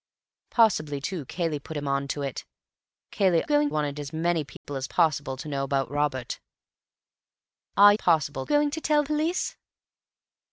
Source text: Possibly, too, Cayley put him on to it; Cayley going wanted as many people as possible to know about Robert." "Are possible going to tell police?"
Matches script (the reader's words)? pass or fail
pass